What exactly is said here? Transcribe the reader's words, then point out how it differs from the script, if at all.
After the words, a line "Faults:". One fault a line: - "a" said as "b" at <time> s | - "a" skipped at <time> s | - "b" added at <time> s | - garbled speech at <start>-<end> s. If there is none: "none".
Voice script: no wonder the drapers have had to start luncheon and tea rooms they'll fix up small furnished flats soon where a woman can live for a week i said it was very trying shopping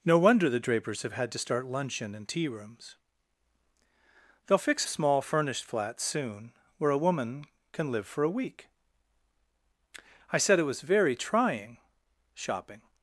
no wonder the drapers have had to start luncheon and tea rooms they'll fix small furnished flats soon where a woman can live for a week i said it was very trying shopping
Faults:
- "up" skipped at 4.9 s